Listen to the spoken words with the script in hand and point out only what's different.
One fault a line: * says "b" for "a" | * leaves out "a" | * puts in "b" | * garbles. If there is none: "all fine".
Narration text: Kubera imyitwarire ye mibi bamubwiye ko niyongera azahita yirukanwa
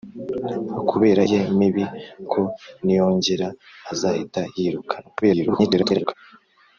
* leaves out "imyitwarire"
* leaves out "bamubwiye"
* garbles